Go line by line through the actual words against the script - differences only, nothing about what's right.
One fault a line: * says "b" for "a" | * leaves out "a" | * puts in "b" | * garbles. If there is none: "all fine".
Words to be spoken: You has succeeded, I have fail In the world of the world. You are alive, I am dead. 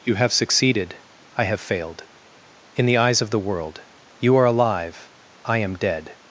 * says "have" for "has"
* says "failed" for "fail"
* says "eyes" for "world"